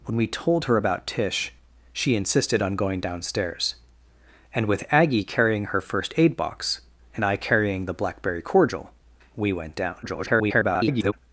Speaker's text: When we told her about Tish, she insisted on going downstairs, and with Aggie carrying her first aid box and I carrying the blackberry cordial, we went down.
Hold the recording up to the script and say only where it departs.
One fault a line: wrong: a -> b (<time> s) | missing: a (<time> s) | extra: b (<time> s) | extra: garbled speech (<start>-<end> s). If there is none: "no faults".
extra: garbled speech (10.0-11.1 s)